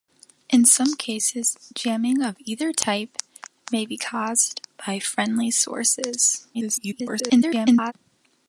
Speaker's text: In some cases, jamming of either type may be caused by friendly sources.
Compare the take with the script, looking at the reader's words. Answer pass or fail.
fail